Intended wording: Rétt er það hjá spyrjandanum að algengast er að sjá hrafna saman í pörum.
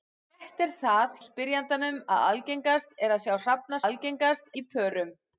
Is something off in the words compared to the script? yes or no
yes